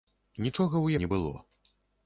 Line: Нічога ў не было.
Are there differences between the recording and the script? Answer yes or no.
no